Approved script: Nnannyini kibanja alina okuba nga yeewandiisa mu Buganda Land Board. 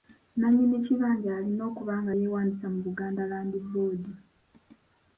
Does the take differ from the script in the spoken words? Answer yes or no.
no